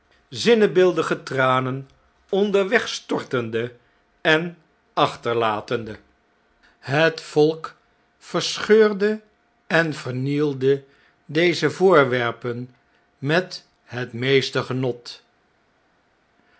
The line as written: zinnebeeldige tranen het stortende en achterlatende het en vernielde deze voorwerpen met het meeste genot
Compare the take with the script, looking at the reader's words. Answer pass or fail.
fail